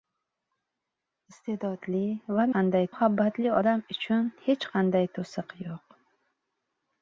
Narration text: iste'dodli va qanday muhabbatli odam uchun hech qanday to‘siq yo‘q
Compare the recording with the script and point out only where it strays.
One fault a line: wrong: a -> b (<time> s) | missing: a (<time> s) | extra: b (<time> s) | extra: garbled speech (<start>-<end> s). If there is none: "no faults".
no faults